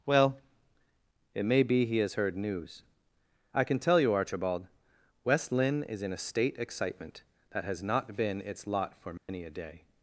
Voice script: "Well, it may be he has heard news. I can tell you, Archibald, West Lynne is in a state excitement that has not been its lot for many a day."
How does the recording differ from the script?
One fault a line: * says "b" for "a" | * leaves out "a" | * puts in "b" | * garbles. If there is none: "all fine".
all fine